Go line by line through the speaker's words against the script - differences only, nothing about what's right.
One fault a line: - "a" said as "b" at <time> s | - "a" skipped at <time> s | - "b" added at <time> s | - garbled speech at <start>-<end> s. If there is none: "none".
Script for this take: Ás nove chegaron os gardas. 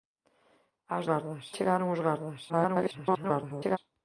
- "nove" said as "gardas" at 1.1 s
- garbled speech at 2.5-3.8 s